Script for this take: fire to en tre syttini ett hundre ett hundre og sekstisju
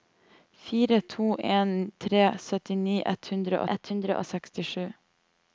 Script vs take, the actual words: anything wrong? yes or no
no